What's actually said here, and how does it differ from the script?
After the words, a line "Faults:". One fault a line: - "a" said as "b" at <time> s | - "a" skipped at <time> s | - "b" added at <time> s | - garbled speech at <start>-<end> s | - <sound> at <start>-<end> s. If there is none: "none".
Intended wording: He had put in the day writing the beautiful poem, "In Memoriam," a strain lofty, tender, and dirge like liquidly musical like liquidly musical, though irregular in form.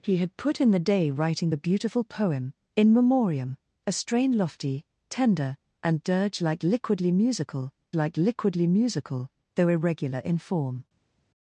He had put in the day writing the beautiful poem, "In Memoriam," a strain lofty, tender, and dirge like liquidly musical like liquidly musical, though irregular in form.
Faults:
none